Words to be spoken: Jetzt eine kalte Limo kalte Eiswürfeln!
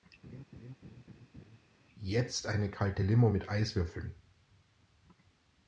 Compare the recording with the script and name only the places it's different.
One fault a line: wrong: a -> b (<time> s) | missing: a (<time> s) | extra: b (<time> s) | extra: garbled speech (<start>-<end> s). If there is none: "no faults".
wrong: kalte -> mit (3.3 s)